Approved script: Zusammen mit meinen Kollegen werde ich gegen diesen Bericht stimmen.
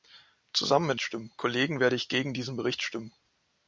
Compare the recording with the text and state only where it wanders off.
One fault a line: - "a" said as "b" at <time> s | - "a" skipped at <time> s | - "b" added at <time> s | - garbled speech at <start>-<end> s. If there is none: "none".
- "meinen" said as "stimmen" at 1.0 s